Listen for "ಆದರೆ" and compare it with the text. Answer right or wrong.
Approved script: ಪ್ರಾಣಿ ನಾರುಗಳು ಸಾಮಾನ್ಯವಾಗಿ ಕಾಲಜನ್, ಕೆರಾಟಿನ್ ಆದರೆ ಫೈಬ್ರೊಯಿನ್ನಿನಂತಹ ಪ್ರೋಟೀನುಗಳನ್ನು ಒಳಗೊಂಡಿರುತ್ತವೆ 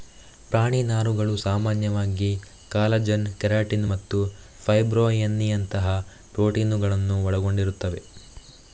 wrong